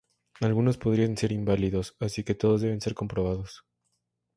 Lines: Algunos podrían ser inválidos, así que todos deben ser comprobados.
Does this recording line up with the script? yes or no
yes